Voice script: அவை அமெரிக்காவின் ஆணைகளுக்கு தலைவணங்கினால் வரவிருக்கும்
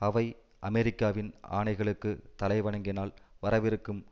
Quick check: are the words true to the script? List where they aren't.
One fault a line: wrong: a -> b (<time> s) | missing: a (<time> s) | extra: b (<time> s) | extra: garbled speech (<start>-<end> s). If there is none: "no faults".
no faults